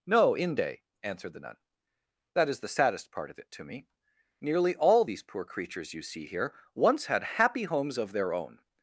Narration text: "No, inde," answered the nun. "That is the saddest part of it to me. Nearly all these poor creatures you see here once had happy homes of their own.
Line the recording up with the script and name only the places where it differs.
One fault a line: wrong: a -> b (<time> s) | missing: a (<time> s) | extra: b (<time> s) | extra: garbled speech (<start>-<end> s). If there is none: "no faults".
no faults